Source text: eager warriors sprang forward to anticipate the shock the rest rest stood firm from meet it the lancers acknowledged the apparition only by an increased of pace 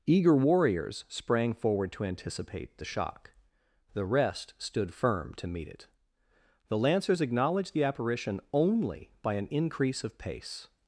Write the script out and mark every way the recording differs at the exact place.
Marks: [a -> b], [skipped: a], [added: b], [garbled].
eager warriors sprang forward to anticipate the shock the rest [skipped: rest] stood firm [from -> to] meet it the lancers acknowledged the apparition only by an [increased -> increase] of pace